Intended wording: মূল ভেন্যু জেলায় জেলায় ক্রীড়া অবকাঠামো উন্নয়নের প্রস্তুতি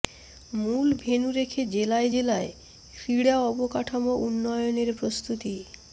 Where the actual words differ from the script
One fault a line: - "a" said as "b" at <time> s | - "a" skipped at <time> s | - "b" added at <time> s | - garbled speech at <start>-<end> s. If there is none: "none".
- "রেখে" added at 1.3 s